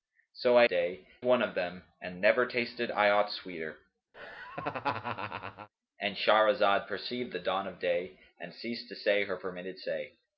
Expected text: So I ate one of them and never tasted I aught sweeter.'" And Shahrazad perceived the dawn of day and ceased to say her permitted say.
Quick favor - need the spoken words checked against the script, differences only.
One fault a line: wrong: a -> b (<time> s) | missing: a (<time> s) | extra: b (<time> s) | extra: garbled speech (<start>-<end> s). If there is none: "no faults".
wrong: ate -> day (0.7 s)